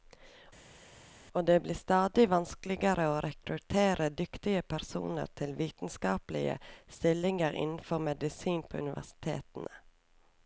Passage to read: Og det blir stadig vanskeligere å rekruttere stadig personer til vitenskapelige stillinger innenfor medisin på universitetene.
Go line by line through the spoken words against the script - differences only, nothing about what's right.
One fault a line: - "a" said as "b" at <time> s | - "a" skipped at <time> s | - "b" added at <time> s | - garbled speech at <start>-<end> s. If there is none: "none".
- "stadig" said as "dyktige" at 4.2 s